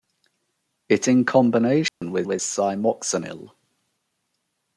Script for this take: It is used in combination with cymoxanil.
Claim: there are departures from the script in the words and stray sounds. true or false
true